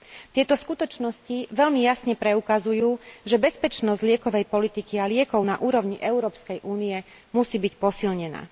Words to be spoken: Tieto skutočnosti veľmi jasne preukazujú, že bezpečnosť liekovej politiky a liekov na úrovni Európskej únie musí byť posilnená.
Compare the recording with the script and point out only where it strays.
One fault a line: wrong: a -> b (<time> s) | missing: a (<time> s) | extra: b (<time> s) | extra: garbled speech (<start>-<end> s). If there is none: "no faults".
no faults